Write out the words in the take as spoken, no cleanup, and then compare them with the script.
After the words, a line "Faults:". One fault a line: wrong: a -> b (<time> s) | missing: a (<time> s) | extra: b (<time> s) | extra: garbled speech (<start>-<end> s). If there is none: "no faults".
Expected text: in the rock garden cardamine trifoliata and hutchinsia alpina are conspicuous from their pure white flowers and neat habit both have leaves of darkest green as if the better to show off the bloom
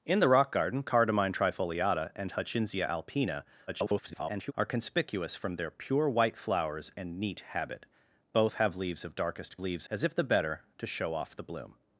in the rock garden cardamine trifoliata and hutchinsia alpina [garbled] are conspicuous from their pure white flowers and neat habit both have leaves of darkest leaves as if the better to show off the bloom
Faults:
extra: garbled speech (3.7-4.5 s)
wrong: green -> leaves (9.6 s)